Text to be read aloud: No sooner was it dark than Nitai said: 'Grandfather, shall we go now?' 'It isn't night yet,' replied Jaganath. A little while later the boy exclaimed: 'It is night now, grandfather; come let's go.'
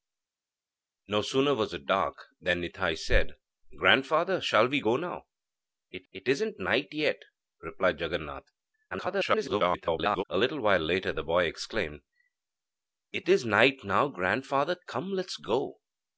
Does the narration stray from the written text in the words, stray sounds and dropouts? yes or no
yes